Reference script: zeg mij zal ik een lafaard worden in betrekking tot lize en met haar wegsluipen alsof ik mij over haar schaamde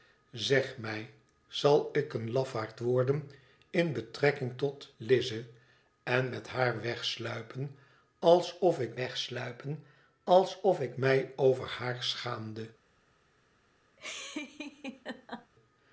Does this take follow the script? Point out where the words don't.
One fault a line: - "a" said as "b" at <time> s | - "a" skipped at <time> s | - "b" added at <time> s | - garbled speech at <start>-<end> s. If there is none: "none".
- "wegsluipen alsof ik" added at 9.0 s